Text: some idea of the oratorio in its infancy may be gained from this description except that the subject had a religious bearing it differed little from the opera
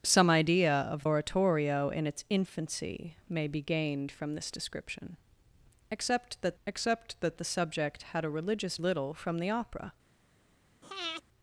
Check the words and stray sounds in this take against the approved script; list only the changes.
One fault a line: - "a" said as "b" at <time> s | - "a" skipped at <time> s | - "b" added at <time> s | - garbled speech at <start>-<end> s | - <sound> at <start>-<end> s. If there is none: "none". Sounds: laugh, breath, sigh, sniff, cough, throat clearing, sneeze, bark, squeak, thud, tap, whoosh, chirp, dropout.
- "the" skipped at 1.1 s
- "except that" added at 6.7 s
- "bearing it differed" skipped at 8.8 s
- breath at 10.8-11.2 s